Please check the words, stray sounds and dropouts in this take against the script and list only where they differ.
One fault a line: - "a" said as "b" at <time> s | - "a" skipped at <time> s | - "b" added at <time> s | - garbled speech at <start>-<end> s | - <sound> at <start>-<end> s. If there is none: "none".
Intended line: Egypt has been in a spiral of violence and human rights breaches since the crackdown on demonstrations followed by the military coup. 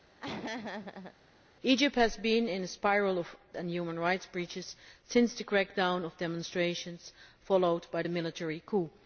- laugh at 0.2-1.1 s
- "violence" skipped at 3.3 s